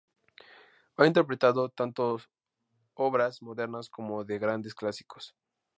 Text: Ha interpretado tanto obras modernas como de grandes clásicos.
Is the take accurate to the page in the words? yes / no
yes